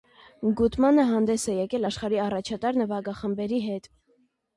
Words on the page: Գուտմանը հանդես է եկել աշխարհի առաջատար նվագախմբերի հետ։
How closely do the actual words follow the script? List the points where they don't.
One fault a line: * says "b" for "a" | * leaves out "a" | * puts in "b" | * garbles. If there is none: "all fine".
all fine